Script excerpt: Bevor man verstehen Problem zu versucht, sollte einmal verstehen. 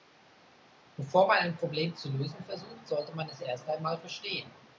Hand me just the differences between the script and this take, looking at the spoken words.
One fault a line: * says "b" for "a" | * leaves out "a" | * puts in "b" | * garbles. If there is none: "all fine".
* says "ein" for "verstehen"
* puts in "lösen"
* puts in "man es erst"